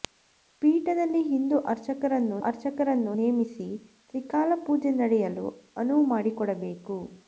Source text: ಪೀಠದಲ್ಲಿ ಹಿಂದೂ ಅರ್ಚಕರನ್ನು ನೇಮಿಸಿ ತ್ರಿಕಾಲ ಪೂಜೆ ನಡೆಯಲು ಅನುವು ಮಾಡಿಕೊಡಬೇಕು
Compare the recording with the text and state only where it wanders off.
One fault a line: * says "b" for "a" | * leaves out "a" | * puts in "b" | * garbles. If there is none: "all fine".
* puts in "ಅರ್ಚಕರನ್ನು"